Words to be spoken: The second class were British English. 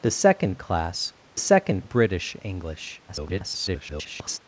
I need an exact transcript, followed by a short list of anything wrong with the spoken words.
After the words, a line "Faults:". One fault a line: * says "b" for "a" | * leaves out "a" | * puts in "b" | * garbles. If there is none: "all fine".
The second class second British English. [garbled]
Faults:
* says "second" for "were"
* garbles